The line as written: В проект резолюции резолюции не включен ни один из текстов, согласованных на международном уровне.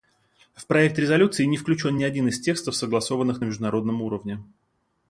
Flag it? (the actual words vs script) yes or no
yes